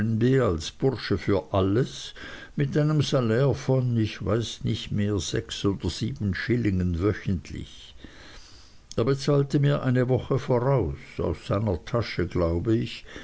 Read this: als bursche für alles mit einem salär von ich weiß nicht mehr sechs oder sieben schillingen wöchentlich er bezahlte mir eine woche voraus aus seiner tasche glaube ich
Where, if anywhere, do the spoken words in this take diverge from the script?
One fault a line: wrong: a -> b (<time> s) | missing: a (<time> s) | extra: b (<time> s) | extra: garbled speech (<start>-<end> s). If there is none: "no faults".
no faults